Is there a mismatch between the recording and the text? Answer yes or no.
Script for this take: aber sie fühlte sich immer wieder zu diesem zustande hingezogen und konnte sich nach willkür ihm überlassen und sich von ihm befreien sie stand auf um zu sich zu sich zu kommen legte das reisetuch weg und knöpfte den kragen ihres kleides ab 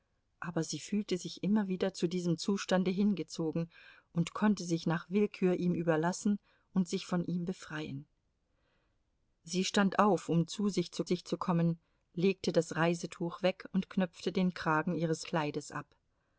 no